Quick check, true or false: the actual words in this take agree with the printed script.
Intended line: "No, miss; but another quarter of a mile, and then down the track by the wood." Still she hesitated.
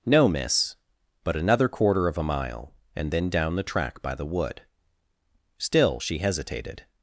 true